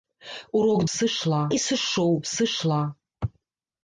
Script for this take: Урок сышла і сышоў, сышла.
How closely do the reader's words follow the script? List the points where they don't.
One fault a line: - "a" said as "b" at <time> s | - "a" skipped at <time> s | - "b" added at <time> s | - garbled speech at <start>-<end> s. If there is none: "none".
none